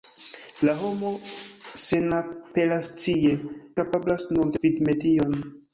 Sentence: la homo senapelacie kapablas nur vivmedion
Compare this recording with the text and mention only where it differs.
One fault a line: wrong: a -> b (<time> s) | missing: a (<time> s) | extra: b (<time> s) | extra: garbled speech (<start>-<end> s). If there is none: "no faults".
no faults